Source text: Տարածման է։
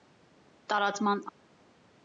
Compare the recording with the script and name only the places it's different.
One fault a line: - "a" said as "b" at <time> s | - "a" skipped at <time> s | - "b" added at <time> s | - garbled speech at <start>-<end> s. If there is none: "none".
none